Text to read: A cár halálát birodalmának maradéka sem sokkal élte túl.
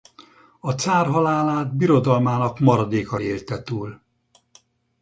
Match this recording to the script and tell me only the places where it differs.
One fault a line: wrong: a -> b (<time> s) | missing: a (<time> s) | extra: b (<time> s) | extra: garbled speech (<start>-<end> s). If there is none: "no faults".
missing: sem sokkal (3.2 s)